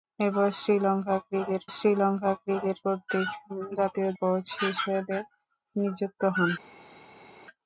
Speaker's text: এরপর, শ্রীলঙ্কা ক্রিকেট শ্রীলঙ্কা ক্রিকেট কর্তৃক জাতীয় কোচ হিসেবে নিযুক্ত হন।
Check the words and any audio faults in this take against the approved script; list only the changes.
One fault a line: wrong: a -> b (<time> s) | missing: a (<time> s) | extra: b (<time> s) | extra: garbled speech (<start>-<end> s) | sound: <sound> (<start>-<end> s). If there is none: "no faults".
no faults